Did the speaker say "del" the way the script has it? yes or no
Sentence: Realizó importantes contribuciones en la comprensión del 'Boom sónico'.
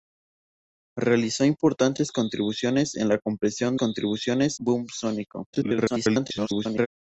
no